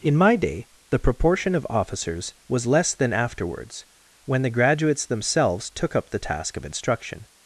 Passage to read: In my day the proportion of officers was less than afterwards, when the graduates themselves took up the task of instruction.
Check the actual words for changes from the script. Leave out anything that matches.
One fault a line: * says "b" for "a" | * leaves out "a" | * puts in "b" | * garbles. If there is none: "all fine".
all fine